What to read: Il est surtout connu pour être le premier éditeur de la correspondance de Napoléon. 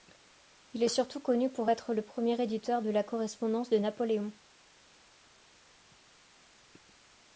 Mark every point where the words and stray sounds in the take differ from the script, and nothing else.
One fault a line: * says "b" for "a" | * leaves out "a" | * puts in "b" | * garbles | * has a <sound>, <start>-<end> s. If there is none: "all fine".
all fine